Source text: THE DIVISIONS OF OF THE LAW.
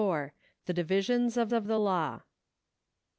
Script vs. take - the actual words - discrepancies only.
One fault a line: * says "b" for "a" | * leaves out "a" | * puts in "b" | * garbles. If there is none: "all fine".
all fine